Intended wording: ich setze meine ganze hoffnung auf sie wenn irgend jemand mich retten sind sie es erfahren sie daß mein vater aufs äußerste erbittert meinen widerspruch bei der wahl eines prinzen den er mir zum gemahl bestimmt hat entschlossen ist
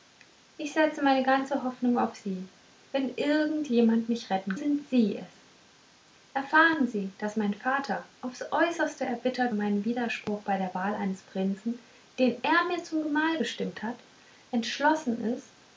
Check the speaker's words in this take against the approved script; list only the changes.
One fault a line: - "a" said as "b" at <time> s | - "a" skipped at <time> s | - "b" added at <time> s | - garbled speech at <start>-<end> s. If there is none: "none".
none